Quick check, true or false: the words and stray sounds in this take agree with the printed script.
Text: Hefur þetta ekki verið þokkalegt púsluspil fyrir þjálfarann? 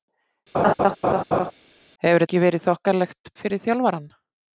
false